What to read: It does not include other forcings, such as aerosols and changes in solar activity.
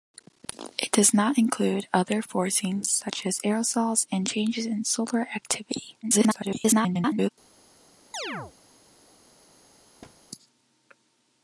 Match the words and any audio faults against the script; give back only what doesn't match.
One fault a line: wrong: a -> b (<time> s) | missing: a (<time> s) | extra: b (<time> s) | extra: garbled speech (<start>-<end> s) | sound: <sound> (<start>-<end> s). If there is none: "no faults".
extra: garbled speech (6.0-7.3 s)
sound: chirp (8.1-8.5 s)
sound: thud (10.0-10.2 s)